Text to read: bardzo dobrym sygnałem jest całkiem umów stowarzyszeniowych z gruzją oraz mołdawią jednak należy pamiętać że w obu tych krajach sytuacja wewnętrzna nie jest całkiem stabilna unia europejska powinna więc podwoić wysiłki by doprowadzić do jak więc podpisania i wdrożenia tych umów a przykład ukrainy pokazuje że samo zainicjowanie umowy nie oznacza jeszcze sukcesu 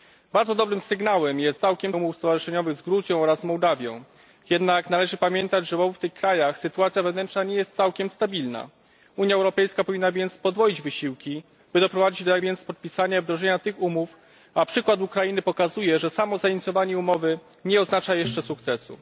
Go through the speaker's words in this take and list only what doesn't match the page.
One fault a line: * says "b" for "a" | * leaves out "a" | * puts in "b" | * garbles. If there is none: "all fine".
all fine